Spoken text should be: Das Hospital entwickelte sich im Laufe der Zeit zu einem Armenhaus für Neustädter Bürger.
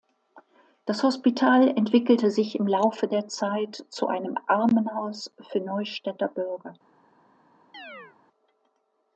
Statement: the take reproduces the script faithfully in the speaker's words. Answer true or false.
true